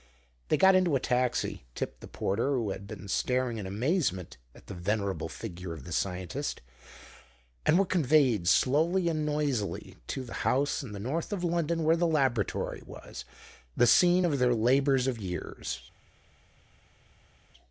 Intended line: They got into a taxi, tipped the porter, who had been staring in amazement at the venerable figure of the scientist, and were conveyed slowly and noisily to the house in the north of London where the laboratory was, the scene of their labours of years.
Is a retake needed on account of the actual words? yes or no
no